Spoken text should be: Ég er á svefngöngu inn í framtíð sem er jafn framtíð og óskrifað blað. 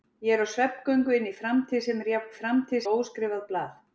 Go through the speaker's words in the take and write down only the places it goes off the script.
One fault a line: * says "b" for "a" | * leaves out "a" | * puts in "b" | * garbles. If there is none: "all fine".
all fine